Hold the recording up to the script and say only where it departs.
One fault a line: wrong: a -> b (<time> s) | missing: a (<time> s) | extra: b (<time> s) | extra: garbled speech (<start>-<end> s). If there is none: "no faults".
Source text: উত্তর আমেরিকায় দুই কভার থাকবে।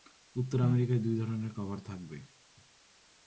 extra: ধরনের (1.1 s)